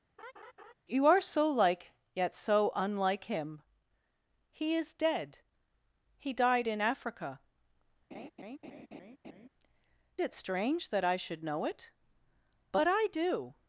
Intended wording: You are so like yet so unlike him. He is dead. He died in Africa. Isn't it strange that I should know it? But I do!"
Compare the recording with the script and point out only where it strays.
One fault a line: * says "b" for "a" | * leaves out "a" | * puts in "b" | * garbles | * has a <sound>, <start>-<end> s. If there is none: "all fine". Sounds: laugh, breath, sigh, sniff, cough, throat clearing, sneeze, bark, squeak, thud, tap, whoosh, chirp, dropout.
* has a laugh, 0.2-0.7 s
* leaves out "Isn't"
* has a laugh, 8.1-9.5 s